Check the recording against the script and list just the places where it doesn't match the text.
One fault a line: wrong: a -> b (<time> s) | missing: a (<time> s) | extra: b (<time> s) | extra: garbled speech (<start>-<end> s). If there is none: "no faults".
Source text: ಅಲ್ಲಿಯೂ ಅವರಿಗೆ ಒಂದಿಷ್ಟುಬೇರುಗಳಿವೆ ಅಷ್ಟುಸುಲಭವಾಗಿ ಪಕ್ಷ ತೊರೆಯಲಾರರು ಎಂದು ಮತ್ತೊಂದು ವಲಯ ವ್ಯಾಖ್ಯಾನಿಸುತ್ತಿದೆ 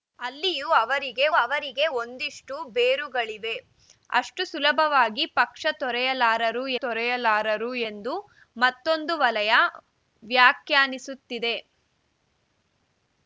extra: ಅವರಿಗೆ (1.4 s)
extra: ತೊರೆಯಲಾರರು (6.8 s)